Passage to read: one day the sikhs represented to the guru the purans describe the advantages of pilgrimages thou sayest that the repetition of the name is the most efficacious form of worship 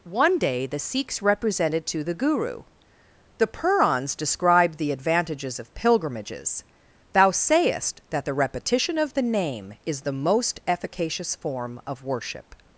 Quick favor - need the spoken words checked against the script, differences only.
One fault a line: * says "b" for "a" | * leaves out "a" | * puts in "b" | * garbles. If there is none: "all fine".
all fine